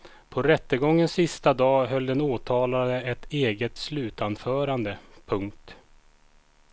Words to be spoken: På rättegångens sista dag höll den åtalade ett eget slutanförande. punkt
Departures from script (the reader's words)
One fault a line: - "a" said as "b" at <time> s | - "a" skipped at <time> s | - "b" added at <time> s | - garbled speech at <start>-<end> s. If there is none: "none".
none